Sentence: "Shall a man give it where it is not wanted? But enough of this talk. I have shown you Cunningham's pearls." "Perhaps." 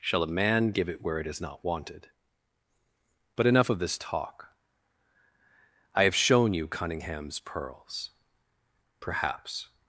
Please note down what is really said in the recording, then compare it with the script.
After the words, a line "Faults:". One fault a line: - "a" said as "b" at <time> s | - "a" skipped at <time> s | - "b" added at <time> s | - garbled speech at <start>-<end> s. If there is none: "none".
"Shall a man give it where it is not wanted? But enough of this talk. I have shown you Cunningham's pearls." "Perhaps."
Faults:
none